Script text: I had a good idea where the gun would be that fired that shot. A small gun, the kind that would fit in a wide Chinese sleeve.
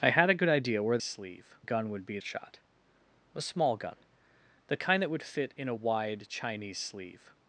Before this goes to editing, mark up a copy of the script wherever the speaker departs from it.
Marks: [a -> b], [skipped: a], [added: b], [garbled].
I had a good idea where [the -> sleeve] gun would be [skipped: that fired that] shot. A small gun, the kind that would fit in a wide Chinese sleeve.